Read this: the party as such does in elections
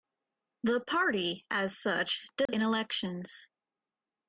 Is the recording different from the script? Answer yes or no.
no